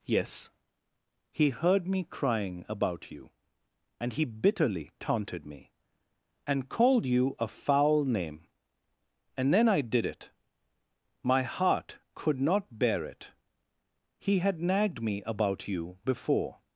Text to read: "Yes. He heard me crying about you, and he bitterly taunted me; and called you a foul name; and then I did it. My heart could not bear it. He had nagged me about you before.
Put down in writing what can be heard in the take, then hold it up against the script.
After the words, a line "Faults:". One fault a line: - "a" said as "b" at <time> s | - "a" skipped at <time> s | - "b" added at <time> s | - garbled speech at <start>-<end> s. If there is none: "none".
"Yes. He heard me crying about you, and he bitterly taunted me; and called you a foul name; and then I did it. My heart could not bear it. He had nagged me about you before.
Faults:
none